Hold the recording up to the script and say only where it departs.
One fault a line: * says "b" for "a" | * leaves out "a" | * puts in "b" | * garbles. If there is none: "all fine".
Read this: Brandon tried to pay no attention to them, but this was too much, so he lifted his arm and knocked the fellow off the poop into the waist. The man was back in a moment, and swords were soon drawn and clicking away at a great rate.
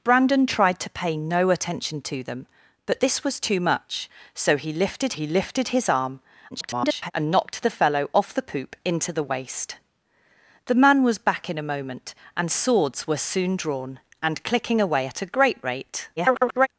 * puts in "he lifted"
* garbles
* garbles